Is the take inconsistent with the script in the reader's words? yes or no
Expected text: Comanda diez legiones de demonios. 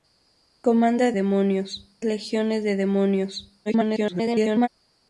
yes